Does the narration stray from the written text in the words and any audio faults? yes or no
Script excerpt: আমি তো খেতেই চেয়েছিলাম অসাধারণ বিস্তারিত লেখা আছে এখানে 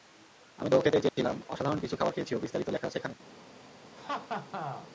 yes